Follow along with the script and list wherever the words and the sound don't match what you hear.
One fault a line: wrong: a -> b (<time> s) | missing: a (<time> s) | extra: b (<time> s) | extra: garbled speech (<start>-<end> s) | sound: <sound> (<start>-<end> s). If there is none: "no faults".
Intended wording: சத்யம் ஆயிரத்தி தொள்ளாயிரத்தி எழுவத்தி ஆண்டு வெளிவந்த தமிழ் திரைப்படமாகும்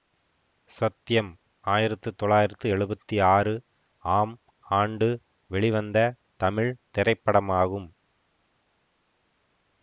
extra: ஆறு ஆம் (3.3 s)